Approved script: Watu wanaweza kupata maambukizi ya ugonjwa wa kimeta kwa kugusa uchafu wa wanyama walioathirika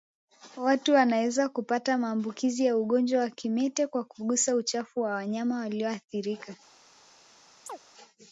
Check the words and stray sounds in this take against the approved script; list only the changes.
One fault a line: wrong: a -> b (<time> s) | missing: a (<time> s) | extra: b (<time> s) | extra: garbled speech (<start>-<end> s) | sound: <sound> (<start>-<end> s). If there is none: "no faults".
sound: chirp (7.7-7.8 s)